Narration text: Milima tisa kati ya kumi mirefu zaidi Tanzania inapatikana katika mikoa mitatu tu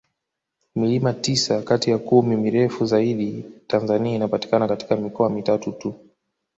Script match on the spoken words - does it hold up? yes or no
yes